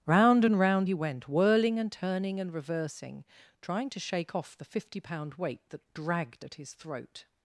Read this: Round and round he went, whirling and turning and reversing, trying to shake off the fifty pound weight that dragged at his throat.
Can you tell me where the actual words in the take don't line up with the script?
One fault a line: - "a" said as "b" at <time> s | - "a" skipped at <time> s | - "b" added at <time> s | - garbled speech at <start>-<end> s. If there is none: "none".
none